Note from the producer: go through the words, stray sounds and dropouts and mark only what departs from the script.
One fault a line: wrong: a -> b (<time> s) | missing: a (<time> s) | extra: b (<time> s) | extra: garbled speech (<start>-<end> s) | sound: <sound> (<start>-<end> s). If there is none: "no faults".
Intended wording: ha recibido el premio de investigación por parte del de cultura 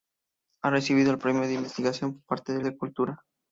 no faults